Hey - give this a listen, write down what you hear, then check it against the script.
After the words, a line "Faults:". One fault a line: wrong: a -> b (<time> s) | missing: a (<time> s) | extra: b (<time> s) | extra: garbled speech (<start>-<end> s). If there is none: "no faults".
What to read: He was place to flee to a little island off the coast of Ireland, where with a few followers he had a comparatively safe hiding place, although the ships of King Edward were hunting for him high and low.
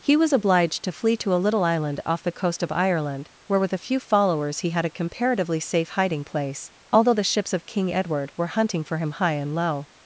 He was obliged to flee to a little island off the coast of Ireland, where with a few followers he had a comparatively safe hiding place, although the ships of King Edward were hunting for him high and low.
Faults:
wrong: place -> obliged (0.3 s)